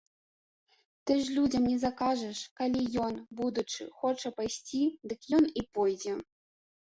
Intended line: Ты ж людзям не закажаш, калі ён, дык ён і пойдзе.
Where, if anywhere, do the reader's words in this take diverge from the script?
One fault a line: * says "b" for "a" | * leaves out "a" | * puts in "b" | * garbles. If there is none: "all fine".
* puts in "будучы хоча пайсці"